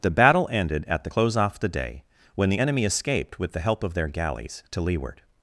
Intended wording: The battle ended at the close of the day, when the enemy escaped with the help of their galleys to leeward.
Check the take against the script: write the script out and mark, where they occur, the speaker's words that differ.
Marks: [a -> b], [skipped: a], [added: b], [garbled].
The battle ended at the close [of -> off] the day, when the enemy escaped with the help of their galleys to leeward.